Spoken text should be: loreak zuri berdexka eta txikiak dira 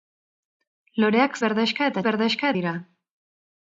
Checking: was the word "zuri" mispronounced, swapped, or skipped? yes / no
yes